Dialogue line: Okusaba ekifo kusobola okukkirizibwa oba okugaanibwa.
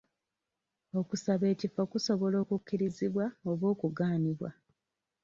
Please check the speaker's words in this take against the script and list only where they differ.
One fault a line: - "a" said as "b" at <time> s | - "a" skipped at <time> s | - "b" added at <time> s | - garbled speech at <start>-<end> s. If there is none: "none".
none